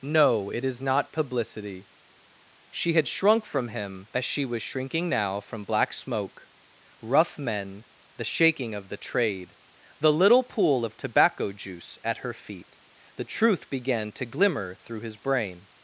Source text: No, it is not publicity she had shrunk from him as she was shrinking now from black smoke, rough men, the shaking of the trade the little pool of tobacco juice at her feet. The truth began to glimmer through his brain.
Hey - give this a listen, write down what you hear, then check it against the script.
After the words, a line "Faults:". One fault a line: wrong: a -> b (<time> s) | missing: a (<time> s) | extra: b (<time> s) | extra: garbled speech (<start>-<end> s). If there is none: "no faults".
No, it is not publicity she had shrunk from him as she was shrinking now from black smoke, rough men, the shaking of the trade the little pool of tobacco juice at her feet. The truth began to glimmer through his brain.
Faults:
no faults